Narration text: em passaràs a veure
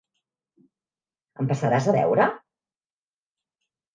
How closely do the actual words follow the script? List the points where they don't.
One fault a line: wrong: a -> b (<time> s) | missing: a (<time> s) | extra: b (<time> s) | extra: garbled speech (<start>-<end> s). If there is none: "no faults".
no faults